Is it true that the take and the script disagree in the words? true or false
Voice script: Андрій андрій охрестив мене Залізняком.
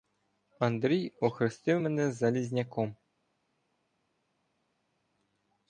true